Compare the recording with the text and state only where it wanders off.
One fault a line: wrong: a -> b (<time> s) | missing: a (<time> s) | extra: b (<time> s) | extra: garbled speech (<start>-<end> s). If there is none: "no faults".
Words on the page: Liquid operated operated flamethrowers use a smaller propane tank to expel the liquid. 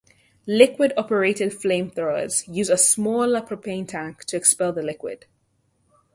missing: operated (1.5 s)